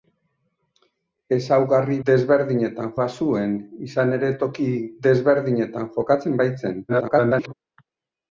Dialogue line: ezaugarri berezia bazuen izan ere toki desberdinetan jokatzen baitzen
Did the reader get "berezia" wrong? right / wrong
wrong